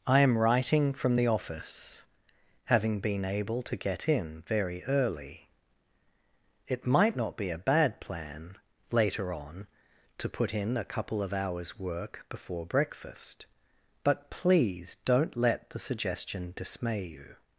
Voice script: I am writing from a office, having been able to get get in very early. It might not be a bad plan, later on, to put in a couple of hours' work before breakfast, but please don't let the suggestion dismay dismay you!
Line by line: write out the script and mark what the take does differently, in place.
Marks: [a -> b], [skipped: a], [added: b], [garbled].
I am writing from [a -> the] office, having been able to get [skipped: get] in very early. It might not be a bad plan, later on, to put in a couple of hours' work before breakfast, but please don't let the suggestion dismay [skipped: dismay] you!